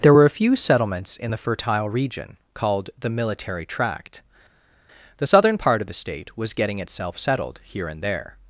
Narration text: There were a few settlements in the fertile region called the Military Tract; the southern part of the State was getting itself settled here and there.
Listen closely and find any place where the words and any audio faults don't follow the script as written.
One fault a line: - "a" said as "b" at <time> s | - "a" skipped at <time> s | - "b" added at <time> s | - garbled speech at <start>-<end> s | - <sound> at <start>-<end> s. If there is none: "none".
none